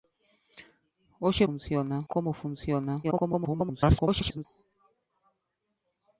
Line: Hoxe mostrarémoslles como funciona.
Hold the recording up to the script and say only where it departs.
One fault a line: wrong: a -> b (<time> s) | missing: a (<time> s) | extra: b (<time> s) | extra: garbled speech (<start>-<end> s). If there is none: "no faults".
wrong: mostrarémoslles -> funciona (1.4 s)
extra: garbled speech (3.0-4.5 s)